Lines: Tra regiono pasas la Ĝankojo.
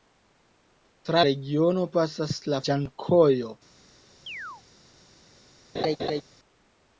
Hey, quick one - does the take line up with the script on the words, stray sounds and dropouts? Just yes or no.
no